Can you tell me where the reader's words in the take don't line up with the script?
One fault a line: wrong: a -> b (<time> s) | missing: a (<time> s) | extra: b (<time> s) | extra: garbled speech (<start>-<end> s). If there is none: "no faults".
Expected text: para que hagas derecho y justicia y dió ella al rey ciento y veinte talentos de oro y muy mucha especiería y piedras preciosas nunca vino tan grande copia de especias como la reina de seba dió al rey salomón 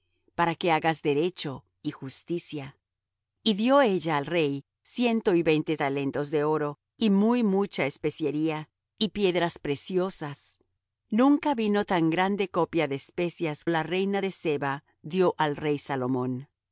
missing: como (13.7 s)